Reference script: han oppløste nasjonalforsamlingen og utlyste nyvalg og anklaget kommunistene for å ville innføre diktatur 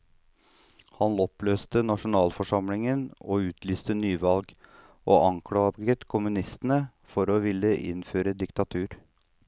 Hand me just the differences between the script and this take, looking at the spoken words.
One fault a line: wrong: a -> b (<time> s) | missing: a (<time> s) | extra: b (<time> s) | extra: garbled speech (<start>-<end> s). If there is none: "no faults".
no faults